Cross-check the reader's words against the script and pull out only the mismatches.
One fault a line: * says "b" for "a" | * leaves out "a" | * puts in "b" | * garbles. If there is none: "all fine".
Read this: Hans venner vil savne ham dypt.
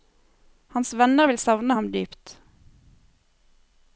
all fine